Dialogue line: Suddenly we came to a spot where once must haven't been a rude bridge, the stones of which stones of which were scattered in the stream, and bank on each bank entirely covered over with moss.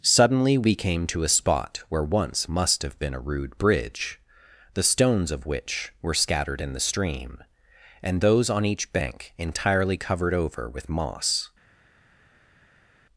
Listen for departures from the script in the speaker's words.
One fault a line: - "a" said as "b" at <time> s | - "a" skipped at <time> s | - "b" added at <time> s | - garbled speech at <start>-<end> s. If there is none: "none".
- "haven't" said as "have" at 2.8 s
- "stones of which" skipped at 5.9 s
- "bank" said as "those" at 8.2 s